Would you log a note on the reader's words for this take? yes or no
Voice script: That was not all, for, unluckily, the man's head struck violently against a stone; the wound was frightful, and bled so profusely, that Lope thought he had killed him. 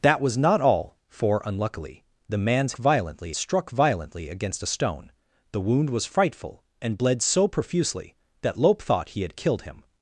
yes